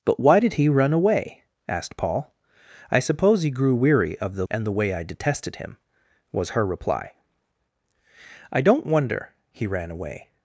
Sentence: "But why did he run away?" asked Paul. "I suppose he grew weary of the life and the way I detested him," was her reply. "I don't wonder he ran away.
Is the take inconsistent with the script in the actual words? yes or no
yes